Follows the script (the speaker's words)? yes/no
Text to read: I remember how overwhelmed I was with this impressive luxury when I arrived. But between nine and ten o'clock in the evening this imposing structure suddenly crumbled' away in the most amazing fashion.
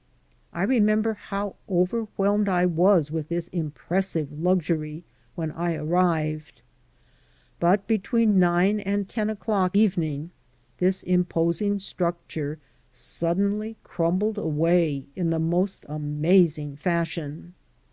no